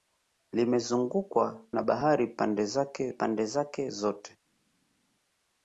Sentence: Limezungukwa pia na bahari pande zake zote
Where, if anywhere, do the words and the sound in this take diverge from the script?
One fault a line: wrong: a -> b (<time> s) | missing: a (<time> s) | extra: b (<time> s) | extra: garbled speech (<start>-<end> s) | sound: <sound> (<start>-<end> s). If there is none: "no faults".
missing: pia (1.6 s)
extra: pande zake (3.1 s)